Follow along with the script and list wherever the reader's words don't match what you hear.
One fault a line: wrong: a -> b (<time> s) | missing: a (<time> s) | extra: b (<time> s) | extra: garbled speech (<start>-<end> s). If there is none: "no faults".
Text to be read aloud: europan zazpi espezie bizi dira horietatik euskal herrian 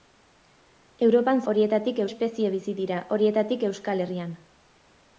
wrong: zazpi -> horietatik (1.5 s)